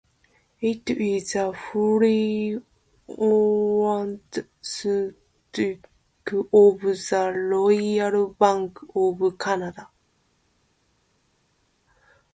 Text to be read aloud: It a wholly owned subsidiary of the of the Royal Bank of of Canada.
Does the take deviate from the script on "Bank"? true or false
false